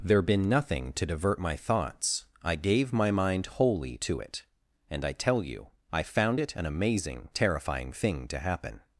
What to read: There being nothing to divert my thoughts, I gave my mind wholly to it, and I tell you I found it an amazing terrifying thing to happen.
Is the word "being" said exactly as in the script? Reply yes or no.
no